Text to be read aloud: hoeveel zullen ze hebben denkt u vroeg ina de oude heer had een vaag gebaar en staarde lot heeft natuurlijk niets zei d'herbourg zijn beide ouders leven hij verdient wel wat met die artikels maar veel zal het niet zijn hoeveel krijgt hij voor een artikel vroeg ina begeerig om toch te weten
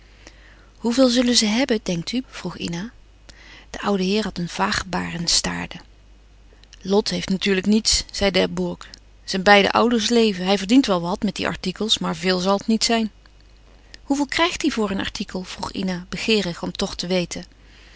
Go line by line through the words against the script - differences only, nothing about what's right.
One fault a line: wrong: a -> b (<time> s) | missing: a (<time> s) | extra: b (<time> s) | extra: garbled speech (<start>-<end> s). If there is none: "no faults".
no faults